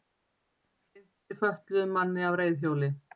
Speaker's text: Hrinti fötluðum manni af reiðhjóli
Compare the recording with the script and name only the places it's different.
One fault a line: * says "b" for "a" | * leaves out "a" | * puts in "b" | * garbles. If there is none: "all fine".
all fine